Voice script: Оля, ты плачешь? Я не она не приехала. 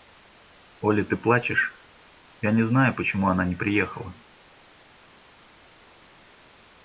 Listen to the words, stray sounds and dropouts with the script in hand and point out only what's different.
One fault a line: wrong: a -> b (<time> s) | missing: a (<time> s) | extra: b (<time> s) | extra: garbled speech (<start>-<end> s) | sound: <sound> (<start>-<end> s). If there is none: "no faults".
extra: знаю почему (2.7 s)